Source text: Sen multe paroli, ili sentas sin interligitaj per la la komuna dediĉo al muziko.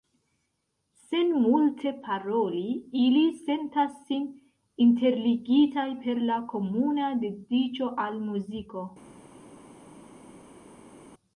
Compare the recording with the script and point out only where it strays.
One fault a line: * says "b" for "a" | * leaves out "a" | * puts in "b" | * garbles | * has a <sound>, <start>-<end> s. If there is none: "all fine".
* leaves out "la"